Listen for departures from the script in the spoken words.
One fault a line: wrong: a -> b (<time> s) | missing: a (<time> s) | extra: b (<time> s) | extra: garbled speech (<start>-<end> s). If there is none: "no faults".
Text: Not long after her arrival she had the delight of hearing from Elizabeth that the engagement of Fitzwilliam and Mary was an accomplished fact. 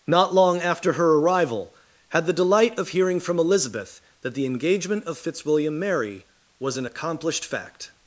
missing: she (1.7 s)
missing: and (5.8 s)